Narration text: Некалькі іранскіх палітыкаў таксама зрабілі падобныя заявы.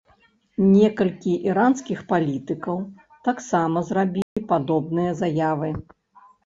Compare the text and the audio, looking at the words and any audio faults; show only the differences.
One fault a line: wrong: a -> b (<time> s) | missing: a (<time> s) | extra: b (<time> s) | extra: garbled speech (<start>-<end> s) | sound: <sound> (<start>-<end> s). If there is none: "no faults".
sound: dropout (4.2-4.4 s)